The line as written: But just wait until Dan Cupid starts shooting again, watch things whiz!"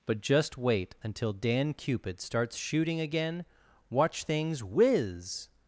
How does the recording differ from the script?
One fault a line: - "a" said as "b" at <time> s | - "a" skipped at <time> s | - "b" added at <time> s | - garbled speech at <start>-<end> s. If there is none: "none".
none